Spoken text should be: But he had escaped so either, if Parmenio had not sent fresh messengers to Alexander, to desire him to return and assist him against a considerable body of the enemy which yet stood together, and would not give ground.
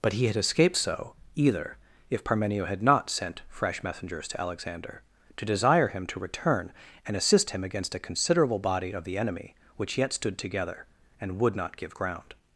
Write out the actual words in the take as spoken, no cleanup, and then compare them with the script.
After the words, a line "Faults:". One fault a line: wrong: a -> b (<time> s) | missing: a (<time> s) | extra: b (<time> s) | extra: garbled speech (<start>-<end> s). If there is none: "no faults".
But he had escaped so either, if Parmenio had not sent fresh messengers to Alexander, to desire him to return and assist him against a considerable body of the enemy which yet stood together, and would not give ground.
Faults:
no faults